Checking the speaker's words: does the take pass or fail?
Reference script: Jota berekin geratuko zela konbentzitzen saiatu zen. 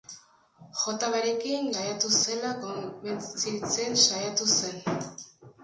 fail